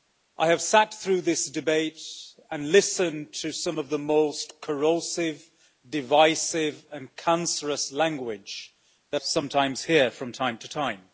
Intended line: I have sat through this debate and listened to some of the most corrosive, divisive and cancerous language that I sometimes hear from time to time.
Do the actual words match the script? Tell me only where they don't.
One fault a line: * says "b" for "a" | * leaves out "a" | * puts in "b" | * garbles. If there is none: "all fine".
* leaves out "I"